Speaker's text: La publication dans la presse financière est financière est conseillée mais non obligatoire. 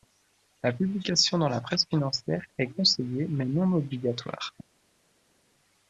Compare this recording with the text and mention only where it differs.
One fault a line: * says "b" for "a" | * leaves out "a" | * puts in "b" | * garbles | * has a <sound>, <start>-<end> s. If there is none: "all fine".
* leaves out "financière est"